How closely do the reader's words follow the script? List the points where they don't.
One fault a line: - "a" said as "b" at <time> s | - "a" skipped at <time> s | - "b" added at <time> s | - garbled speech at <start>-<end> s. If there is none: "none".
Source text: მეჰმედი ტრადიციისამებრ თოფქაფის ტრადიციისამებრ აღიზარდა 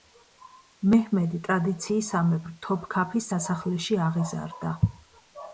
- "ტრადიციისამებრ" said as "სასახლეში" at 3.3 s